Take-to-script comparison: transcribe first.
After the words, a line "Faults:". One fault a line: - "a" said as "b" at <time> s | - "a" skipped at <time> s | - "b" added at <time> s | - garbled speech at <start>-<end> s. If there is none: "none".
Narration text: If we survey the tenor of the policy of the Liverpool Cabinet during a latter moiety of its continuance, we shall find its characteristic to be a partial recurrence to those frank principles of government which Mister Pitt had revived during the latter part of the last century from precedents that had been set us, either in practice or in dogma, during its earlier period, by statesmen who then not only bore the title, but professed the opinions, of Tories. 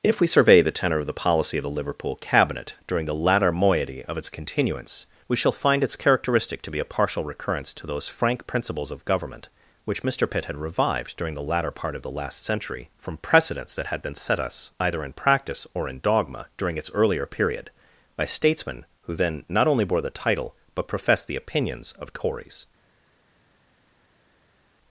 If we survey the tenor of the policy of the Liverpool Cabinet during the latter moiety of its continuance, we shall find its characteristic to be a partial recurrence to those frank principles of government which Mister Pitt had revived during the latter part of the last century from precedents that had been set us, either in practice or in dogma, during its earlier period, by statesmen who then not only bore the title, but professed the opinions, of Tories.
Faults:
- "a" said as "the" at 3.0 s